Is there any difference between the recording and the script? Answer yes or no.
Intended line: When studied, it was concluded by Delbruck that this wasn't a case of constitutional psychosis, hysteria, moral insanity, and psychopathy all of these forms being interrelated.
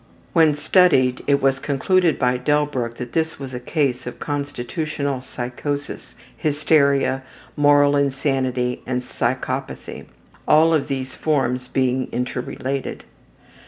yes